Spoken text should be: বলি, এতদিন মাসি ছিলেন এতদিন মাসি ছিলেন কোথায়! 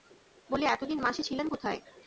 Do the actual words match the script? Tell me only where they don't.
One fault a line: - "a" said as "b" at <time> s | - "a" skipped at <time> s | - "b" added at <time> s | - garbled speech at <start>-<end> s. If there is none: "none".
- "এতদিন মাসি ছিলেন" skipped at 1.5 s